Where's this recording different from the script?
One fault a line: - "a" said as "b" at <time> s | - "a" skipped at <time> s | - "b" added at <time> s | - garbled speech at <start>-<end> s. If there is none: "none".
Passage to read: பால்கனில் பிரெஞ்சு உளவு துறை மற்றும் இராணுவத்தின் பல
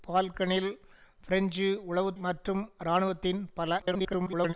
- "துறை" skipped at 2.1 s
- garbled speech at 3.8-4.5 s